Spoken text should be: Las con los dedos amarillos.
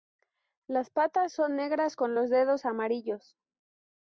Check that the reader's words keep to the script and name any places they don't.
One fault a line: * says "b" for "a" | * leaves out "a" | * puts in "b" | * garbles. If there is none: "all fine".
* puts in "patas son negras"